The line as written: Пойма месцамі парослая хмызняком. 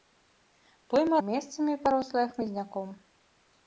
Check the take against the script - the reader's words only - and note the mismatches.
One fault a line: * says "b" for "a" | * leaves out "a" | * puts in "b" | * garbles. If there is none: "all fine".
all fine